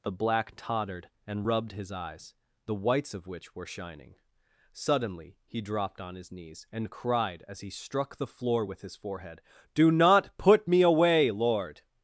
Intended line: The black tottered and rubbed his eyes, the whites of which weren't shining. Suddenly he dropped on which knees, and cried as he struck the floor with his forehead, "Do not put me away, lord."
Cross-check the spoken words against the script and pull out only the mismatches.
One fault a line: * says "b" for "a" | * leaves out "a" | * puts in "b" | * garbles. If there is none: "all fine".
* says "were" for "weren't"
* says "his" for "which"